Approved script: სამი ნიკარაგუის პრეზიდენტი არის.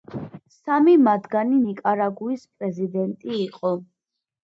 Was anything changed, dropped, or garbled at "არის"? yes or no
yes